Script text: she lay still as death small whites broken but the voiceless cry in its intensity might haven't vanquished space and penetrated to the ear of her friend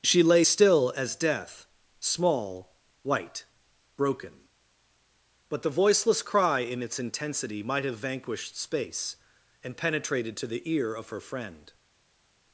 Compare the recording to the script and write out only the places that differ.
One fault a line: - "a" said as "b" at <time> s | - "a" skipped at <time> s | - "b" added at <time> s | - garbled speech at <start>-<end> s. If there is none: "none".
- "whites" said as "white" at 3.0 s
- "haven't" said as "have" at 7.8 s